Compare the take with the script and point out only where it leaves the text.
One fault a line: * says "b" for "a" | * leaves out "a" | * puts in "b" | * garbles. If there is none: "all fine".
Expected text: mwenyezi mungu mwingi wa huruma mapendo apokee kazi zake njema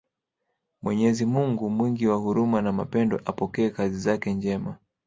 * puts in "na"